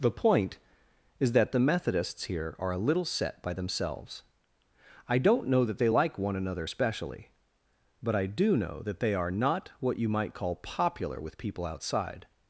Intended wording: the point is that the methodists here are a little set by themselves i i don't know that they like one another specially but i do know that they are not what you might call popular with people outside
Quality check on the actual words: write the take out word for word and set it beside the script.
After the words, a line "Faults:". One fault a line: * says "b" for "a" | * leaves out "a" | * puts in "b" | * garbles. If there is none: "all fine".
the point is that the methodists here are a little set by themselves i don't know that they like one another specially but i do know that they are not what you might call popular with people outside
Faults:
* leaves out "i"